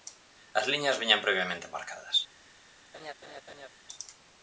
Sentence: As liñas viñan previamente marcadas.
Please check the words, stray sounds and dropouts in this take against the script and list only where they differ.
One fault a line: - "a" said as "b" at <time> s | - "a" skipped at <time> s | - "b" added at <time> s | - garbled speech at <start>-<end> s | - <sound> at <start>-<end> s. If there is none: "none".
- laugh at 2.9-3.7 s